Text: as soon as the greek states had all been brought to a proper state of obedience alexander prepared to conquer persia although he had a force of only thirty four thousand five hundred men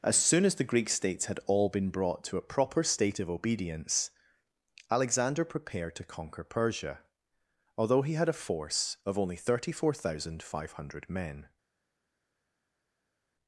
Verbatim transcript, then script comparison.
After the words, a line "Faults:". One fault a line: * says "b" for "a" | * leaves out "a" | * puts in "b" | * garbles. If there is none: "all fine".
as soon as the greek states had all been brought to a proper state of obedience alexander prepared to conquer persia although he had a force of only thirty four thousand five hundred men
Faults:
all fine